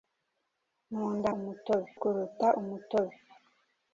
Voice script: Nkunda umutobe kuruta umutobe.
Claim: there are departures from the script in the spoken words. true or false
false